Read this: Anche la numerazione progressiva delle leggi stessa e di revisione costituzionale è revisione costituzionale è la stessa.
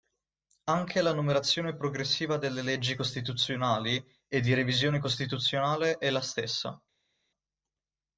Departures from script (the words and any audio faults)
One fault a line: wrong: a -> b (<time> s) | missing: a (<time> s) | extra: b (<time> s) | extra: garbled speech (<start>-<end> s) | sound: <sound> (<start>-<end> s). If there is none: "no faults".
wrong: stessa -> costituzionali (3.0 s)
missing: revisione costituzionale è (6.1 s)